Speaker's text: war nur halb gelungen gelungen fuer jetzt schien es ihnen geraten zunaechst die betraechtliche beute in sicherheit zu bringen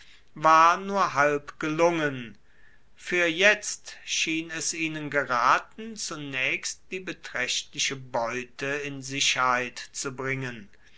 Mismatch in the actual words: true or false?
true